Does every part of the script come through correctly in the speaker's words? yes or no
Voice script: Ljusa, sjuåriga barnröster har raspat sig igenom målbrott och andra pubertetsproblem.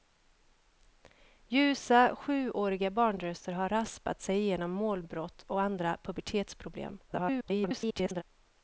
no